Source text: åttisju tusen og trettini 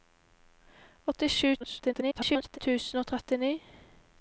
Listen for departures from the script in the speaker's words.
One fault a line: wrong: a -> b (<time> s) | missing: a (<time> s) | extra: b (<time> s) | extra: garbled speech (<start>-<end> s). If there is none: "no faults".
extra: garbled speech (1.6-2.6 s)